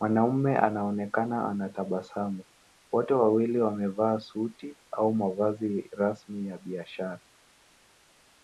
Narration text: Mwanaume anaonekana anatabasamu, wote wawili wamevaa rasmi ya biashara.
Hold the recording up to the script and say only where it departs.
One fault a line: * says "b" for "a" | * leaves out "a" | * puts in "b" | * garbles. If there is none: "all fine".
* puts in "suti au mavazi"